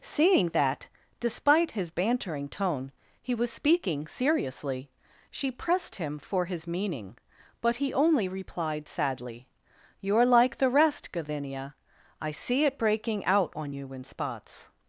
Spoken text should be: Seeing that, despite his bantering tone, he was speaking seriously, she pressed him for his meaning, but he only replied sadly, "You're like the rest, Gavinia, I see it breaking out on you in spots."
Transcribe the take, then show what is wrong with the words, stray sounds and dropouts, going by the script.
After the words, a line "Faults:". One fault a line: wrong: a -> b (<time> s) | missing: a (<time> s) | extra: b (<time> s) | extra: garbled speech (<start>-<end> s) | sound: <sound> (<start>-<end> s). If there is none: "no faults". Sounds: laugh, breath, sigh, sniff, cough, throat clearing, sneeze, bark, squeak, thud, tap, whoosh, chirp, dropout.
Seeing that, despite his bantering tone, he was speaking seriously, she pressed him for his meaning, but he only replied sadly, "You're like the rest, Gavinia, I see it breaking out on you in spots."
Faults:
no faults